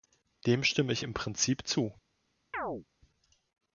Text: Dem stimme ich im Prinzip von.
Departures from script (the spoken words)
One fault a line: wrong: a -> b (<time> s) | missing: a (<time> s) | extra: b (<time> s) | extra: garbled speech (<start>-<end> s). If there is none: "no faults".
wrong: von -> zu (1.7 s)